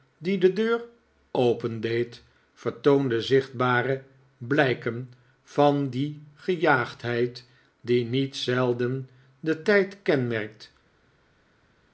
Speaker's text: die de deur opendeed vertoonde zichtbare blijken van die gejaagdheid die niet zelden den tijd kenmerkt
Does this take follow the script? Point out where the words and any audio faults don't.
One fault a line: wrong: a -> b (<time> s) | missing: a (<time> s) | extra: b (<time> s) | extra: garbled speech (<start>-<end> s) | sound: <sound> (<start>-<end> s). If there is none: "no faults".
no faults